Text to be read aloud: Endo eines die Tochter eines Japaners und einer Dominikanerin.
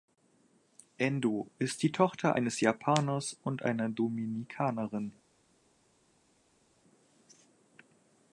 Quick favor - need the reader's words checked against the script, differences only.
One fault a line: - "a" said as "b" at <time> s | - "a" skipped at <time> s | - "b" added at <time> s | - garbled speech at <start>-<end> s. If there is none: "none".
- "eines" said as "ist" at 1.6 s